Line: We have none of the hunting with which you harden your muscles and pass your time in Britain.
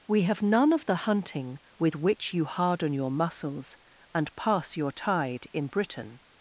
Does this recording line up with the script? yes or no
no